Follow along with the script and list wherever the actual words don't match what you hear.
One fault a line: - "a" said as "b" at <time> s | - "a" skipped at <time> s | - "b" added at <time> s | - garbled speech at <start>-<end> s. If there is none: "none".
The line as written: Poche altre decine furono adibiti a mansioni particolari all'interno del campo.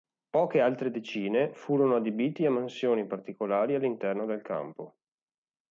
none